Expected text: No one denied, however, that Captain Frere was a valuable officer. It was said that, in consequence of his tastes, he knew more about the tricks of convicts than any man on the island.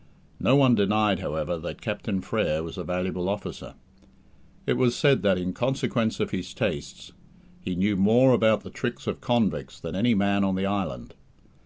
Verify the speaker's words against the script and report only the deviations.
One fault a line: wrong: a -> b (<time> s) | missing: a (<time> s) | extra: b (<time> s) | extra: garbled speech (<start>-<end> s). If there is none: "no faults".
no faults